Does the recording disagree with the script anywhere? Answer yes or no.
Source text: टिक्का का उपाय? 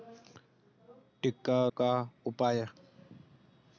no